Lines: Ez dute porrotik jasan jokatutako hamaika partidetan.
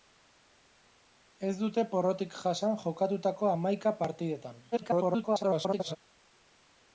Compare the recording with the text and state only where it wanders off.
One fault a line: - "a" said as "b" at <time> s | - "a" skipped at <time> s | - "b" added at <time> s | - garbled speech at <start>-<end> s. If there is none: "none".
- garbled speech at 4.7-6.0 s